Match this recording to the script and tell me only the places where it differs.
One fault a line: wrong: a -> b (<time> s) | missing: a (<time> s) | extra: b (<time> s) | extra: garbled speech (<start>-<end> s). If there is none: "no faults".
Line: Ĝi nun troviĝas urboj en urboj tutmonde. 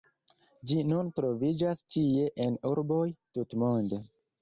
wrong: urboj -> ĉie (2.0 s)